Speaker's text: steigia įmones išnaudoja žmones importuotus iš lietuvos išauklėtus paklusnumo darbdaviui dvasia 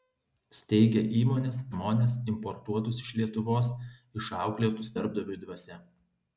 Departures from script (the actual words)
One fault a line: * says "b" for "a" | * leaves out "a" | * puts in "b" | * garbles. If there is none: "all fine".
* leaves out "išnaudoja"
* leaves out "paklusnumo"